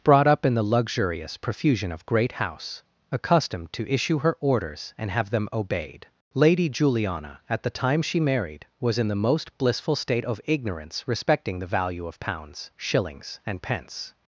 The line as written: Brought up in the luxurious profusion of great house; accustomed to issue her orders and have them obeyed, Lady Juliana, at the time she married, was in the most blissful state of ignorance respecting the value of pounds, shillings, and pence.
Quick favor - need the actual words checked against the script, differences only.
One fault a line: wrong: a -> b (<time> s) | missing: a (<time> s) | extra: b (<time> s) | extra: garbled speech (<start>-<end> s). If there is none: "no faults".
no faults